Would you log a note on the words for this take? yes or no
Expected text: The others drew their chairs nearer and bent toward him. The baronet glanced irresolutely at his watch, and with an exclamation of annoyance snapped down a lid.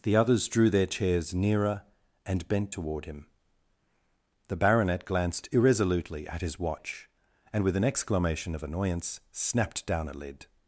no